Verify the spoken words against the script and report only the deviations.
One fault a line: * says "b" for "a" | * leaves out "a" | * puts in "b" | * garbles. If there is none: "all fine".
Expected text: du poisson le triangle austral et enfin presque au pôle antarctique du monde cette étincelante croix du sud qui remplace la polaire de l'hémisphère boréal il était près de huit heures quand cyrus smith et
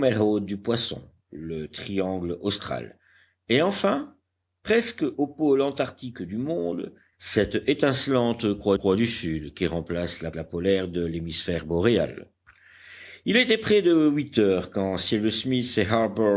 * puts in "croix"
* puts in "la"